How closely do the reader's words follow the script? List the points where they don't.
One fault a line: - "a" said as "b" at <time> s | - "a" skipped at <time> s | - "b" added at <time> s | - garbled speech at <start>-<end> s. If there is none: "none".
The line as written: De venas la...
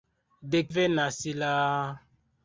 none